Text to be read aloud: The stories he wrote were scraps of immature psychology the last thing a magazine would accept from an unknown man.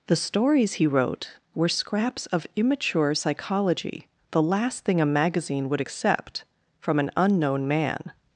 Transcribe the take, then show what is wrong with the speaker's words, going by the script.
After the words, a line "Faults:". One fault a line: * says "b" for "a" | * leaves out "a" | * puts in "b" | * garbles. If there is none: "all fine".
The stories he wrote were scraps of immature psychology the last thing a magazine would accept from an unknown man.
Faults:
all fine